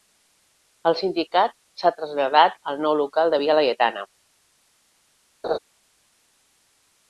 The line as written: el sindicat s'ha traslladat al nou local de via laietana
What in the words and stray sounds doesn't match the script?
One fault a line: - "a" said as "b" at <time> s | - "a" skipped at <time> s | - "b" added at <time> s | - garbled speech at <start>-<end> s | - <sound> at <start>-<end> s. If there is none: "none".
- laugh at 5.4-5.6 s